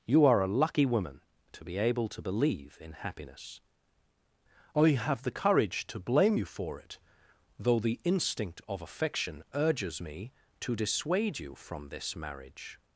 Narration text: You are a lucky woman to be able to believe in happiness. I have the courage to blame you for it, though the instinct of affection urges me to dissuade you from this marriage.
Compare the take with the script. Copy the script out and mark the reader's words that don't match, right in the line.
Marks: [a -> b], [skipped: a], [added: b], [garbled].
You are a lucky woman to be able to believe in happiness. I have the courage to blame you for it, though the instinct of affection urges me to dissuade you from this marriage.